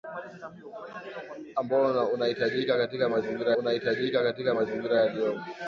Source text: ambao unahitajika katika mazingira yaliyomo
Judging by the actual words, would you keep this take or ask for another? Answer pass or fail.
fail